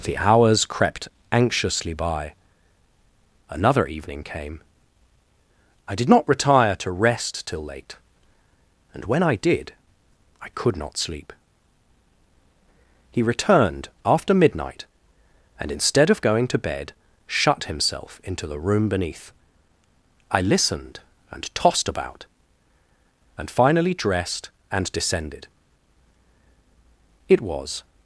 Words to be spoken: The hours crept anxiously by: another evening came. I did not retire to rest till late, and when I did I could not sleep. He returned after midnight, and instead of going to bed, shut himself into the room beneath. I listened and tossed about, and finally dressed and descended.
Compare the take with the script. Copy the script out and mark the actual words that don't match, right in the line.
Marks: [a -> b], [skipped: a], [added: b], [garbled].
The hours crept anxiously by: another evening came. I did not retire to rest till late, and when I did I could not sleep. He returned after midnight, and instead of going to bed, shut himself into the room beneath. I listened and tossed about, and finally dressed and descended. [added: It was]